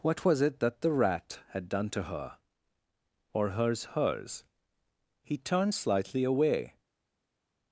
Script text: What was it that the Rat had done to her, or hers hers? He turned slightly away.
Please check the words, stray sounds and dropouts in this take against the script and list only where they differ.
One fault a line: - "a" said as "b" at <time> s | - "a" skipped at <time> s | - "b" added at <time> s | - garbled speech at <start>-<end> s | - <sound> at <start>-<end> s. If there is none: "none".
none